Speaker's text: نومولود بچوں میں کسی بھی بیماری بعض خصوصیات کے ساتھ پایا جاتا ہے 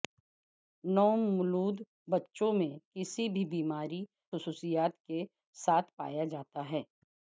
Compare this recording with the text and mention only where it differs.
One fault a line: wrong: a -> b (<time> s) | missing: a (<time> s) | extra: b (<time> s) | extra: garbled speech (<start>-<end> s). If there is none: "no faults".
missing: بعض (4.0 s)